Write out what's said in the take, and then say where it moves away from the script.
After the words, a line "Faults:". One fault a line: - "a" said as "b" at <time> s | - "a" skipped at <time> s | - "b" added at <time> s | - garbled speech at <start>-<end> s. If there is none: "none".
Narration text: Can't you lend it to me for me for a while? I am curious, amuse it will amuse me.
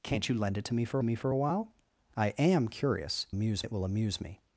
Can't you lend it to me for me for a while? I am curious, amuse it will amuse me.
Faults:
none